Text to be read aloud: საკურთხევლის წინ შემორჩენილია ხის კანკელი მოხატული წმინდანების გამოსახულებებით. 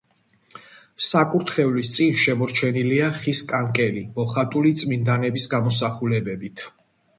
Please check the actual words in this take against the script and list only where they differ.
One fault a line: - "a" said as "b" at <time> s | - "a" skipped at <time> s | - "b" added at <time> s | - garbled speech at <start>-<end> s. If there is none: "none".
none